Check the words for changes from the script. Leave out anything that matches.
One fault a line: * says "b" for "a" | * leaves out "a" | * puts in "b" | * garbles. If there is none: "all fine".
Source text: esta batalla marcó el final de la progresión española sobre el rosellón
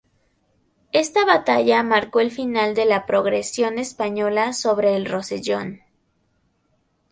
all fine